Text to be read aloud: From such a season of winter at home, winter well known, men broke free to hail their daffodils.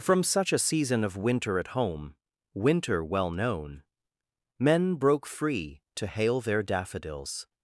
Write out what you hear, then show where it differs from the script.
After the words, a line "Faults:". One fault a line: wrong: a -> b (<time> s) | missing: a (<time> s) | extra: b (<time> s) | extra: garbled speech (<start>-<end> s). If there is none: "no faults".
From such a season of winter at home, winter well known, men broke free to hail their daffodils.
Faults:
no faults